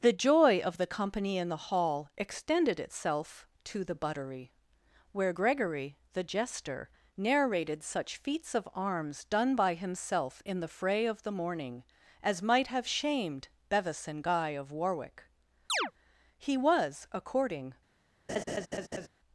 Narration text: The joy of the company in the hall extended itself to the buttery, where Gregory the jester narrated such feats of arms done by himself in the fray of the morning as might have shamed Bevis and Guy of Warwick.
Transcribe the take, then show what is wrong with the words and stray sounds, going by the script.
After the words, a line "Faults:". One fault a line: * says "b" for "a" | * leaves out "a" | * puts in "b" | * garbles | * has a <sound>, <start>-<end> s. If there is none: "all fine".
The joy of the company in the hall extended itself to the buttery, where Gregory the jester narrated such feats of arms done by himself in the fray of the morning as might have shamed Bevis and Guy of Warwick. He was, according
Faults:
* has a chirp, 15.7-15.9 s
* puts in "He was according"
* has a laugh, 18.3-19.1 s